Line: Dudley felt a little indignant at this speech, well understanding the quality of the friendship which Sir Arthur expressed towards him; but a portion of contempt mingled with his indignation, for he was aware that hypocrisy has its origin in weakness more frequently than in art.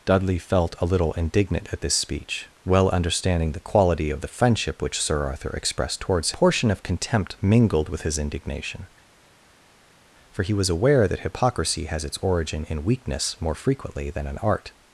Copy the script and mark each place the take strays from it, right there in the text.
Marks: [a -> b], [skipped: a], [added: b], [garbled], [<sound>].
Dudley felt a little indignant at this speech, well understanding the quality of the friendship which Sir Arthur expressed towards [skipped: him; but a] portion of contempt mingled with his indignation, for he was aware that hypocrisy has its origin in weakness more frequently than in art.